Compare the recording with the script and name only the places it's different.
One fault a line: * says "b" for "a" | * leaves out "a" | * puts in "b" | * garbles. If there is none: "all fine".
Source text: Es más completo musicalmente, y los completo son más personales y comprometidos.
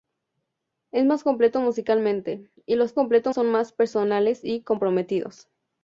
all fine